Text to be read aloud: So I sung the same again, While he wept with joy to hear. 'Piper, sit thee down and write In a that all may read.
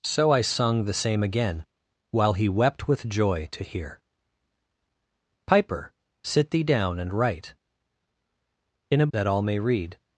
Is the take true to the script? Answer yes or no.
yes